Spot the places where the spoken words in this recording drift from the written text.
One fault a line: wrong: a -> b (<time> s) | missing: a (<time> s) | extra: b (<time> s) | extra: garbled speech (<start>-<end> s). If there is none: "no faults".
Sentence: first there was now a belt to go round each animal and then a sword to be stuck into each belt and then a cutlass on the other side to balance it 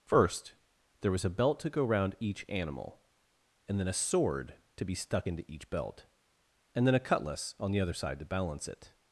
missing: now (1.2 s)